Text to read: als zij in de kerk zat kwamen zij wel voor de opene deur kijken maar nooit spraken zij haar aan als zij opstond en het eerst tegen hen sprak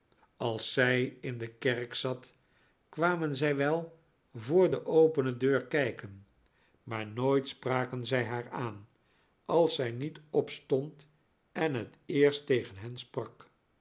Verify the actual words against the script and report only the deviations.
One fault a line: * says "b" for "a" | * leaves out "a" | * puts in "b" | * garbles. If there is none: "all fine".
* puts in "niet"